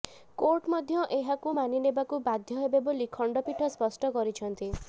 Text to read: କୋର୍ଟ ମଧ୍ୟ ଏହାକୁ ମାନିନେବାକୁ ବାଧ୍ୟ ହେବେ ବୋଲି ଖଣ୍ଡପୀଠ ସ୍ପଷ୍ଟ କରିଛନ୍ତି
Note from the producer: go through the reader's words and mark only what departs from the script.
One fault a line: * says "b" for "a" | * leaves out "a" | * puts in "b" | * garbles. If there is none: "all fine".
all fine